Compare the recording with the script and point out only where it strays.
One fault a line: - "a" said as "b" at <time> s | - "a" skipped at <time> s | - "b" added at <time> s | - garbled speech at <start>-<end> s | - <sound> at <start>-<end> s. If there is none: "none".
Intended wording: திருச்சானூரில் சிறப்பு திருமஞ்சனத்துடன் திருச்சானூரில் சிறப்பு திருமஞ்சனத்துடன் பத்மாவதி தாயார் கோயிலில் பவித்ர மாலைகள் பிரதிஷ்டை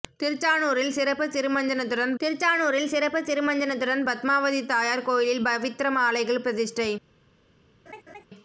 - laugh at 7.9-8.2 s